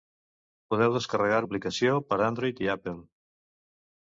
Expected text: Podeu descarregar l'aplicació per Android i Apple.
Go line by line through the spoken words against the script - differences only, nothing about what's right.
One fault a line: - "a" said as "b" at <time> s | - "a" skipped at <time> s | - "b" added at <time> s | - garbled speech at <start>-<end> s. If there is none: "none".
none